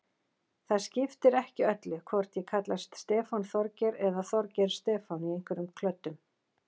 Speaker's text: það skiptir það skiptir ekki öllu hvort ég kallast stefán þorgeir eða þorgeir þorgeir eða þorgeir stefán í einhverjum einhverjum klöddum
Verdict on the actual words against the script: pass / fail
fail